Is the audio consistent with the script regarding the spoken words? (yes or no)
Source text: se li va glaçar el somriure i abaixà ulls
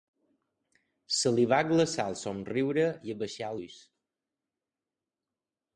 yes